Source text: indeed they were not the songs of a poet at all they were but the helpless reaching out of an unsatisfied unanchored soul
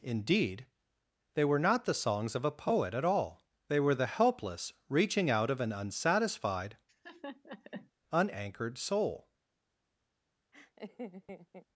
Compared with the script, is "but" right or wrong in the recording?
wrong